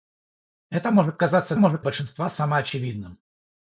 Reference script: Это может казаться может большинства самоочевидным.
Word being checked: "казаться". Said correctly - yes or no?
yes